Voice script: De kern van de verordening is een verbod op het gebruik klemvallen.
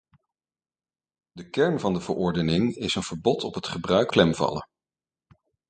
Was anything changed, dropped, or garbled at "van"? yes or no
no